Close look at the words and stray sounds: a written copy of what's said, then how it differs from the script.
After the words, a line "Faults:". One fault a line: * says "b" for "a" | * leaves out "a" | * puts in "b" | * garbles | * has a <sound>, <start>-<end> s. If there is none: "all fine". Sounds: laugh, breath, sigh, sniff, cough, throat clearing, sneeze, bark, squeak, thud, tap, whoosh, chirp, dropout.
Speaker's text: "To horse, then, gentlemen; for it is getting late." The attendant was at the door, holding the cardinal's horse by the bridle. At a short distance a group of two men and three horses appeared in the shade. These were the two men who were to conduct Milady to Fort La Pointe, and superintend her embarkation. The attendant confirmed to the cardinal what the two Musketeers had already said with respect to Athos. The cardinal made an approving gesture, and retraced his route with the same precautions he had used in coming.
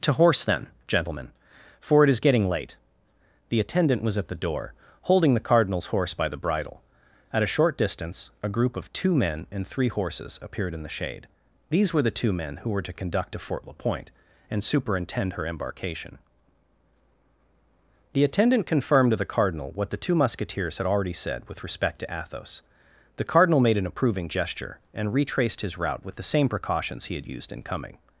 "To horse, then, gentlemen; for it is getting late." The attendant was at the door, holding the cardinal's horse by the bridle. At a short distance a group of two men and three horses appeared in the shade. These were the two men who were to conduct to Fort La Pointe, and superintend her embarkation. The attendant confirmed to the cardinal what the two Musketeers had already said with respect to Athos. The cardinal made an approving gesture, and retraced his route with the same precautions he had used in coming.
Faults:
* leaves out "Milady"